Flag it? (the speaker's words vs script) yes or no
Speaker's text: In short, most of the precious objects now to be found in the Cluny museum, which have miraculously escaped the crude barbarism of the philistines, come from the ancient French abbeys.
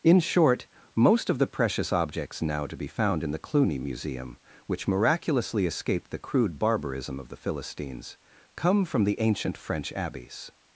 yes